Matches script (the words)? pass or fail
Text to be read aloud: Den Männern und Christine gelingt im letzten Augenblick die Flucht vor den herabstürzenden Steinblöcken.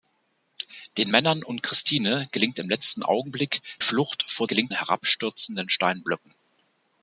fail